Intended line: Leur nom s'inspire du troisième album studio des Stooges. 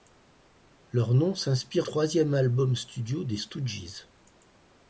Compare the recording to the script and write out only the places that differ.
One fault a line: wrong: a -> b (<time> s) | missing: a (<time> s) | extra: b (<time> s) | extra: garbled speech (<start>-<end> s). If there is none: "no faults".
missing: du (1.9 s)